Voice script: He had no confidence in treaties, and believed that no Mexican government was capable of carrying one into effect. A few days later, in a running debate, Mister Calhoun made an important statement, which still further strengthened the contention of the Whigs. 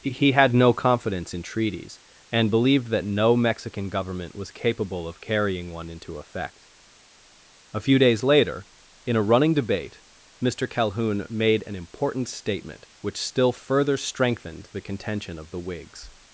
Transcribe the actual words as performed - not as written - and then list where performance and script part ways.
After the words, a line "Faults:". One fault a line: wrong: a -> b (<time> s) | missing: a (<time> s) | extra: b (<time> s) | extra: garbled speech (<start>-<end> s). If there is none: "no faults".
He had no confidence in treaties, and believed that no Mexican government was capable of carrying one into effect. A few days later, in a running debate, Mister Calhoun made an important statement, which still further strengthened the contention of the Whigs.
Faults:
no faults